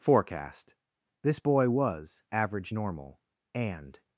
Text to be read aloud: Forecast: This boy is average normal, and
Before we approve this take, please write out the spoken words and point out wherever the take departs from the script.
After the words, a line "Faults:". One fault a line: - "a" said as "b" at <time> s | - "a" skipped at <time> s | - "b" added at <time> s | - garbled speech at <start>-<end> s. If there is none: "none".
Forecast: This boy was average normal, and
Faults:
- "is" said as "was" at 1.7 s